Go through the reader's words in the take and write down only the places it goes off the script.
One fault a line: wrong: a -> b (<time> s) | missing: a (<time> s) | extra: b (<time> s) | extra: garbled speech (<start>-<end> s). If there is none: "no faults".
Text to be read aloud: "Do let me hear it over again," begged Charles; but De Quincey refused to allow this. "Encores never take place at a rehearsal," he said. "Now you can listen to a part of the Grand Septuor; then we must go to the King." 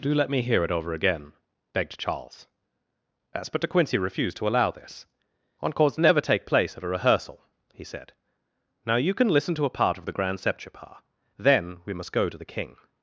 no faults